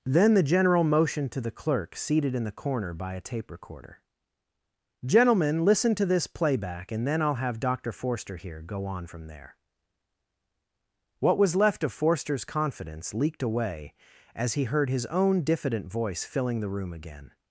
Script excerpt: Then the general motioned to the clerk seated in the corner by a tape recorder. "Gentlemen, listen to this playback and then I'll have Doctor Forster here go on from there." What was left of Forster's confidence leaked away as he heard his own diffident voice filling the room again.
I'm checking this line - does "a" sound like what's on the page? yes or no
yes